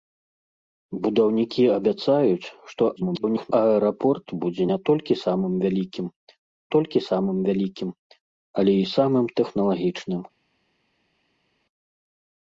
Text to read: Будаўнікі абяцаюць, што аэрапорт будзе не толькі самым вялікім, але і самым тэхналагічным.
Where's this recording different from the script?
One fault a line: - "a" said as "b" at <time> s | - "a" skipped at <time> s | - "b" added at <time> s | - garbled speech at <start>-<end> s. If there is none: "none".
- garbled speech at 3.0-3.5 s
- "толькі самым вялікім" added at 6.8 s